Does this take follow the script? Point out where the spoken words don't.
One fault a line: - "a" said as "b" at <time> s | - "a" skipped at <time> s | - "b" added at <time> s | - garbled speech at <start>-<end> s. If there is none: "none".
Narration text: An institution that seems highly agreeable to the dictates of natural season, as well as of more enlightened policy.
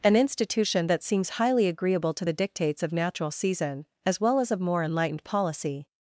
none